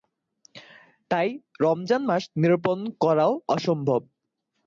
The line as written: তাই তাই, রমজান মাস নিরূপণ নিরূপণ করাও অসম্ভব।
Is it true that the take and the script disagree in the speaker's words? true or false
true